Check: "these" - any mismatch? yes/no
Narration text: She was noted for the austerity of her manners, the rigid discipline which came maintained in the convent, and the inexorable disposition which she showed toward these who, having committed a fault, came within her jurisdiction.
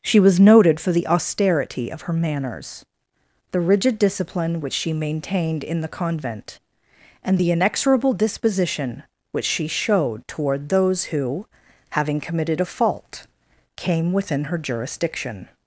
yes